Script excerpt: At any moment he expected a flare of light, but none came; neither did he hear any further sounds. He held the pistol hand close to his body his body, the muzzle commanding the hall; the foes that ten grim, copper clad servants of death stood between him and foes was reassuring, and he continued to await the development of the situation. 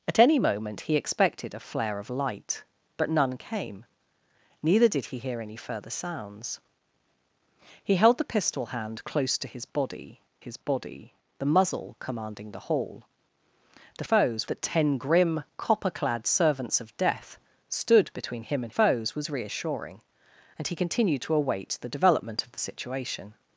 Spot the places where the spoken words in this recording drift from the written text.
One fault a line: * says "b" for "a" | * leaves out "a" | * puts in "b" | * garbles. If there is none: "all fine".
all fine